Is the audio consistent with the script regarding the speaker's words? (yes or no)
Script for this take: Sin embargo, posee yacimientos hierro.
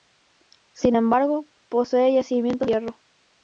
yes